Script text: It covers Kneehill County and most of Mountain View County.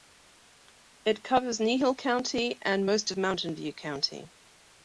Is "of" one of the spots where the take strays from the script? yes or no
no